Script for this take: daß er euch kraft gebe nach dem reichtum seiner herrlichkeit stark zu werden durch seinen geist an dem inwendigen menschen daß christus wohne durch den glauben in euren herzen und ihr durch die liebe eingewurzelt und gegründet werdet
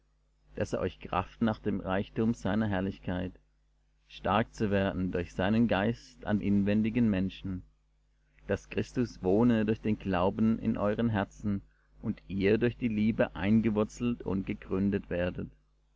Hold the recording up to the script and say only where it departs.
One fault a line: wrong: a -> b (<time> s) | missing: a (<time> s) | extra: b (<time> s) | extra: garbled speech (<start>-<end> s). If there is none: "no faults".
missing: gebe (1.4 s)
missing: dem (6.4 s)